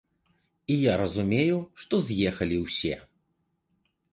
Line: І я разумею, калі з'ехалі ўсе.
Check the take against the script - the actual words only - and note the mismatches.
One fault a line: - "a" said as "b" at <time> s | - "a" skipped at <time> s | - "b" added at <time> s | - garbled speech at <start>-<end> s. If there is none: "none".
- "калі" said as "што" at 1.8 s